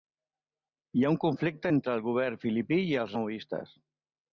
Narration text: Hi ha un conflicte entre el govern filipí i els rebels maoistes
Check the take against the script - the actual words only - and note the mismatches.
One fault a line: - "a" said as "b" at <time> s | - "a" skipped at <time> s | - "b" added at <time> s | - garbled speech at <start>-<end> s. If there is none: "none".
- "rebels" skipped at 3.2 s